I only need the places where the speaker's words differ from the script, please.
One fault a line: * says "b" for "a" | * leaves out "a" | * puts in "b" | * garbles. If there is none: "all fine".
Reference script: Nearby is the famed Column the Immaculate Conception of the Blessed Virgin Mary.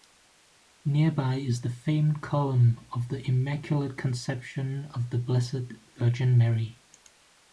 * puts in "of"